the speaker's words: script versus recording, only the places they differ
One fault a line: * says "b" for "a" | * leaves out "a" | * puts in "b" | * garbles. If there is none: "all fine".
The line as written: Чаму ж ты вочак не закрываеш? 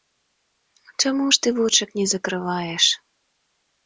all fine